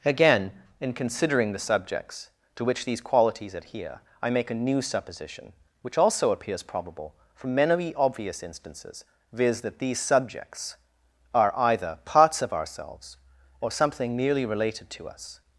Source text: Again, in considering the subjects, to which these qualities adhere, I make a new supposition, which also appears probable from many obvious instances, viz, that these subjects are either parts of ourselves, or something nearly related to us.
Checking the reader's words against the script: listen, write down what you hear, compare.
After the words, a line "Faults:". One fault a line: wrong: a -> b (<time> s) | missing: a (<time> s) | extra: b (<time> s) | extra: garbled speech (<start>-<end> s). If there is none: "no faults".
Again, in considering the subjects, to which these qualities adhere, I make a new supposition, which also appears probable from many obvious instances, viz, that these subjects are either parts of ourselves, or something merely related to us.
Faults:
wrong: nearly -> merely (14.2 s)